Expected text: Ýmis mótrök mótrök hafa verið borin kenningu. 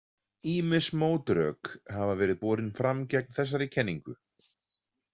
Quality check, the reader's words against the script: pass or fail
fail